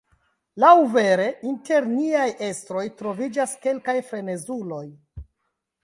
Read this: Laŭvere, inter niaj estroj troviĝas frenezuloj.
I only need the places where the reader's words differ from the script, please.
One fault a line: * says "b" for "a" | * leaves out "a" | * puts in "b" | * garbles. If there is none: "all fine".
* puts in "kelkaj"